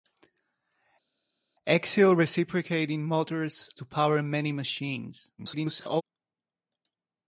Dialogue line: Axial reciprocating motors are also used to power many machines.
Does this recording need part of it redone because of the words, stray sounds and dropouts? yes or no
yes